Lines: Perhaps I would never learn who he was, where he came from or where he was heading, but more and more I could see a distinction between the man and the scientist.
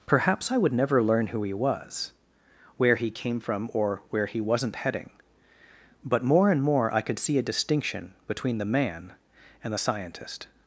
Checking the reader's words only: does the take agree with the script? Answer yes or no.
no